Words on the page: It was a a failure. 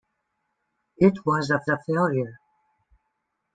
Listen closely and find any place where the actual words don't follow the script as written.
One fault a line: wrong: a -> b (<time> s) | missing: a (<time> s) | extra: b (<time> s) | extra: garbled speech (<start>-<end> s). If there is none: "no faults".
no faults